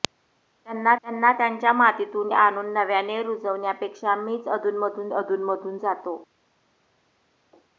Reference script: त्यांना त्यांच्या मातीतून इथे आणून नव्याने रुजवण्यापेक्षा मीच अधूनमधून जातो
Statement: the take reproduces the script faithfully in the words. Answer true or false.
false